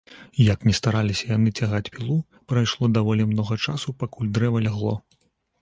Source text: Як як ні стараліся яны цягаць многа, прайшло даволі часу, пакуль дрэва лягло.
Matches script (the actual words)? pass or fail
fail